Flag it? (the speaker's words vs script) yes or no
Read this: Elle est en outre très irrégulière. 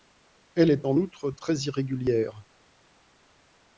no